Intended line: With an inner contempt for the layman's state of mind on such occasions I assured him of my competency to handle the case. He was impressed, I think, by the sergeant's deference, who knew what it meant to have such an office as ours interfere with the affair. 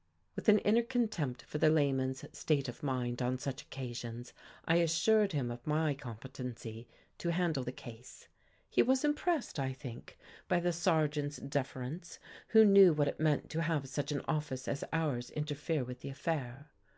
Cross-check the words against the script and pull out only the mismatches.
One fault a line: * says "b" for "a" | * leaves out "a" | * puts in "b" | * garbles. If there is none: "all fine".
all fine